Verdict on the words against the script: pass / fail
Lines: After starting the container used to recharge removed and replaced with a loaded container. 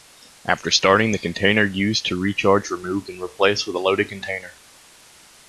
pass